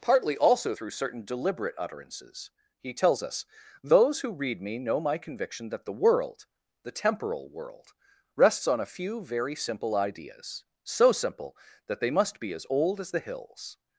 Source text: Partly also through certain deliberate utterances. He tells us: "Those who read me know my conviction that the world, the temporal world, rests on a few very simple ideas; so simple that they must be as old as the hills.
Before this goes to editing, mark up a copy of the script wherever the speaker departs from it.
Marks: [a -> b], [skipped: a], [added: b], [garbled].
Partly also through certain deliberate utterances. He tells us: "Those who read me know my conviction that the world, the temporal world, rests on a few very simple ideas; so simple that they must be as old as the hills.